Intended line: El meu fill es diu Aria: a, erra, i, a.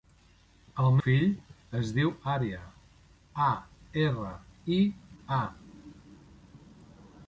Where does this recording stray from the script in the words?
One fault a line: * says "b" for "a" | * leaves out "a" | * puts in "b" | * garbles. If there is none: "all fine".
* leaves out "meu"